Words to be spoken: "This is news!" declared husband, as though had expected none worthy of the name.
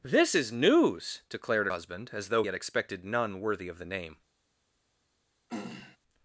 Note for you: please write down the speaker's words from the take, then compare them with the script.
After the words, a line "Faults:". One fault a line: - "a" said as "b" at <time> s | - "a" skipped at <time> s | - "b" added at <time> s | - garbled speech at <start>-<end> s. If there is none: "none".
"This is news!" declared husband, as though had expected none worthy of the name.
Faults:
none